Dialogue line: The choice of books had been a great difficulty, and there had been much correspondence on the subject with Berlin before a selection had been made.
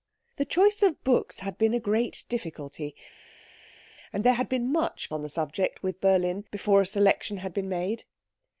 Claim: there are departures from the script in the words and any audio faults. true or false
true